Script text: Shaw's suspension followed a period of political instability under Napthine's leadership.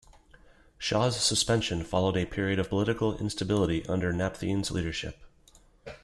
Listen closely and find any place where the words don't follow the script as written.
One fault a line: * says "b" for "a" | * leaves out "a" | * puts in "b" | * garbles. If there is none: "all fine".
all fine